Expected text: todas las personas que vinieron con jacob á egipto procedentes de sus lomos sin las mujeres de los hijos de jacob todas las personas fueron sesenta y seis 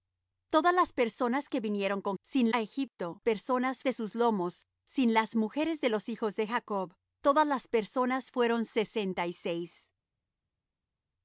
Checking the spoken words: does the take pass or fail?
fail